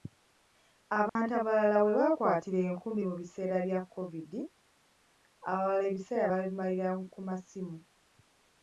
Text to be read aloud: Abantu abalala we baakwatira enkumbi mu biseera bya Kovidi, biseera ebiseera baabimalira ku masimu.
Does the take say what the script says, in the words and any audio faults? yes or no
no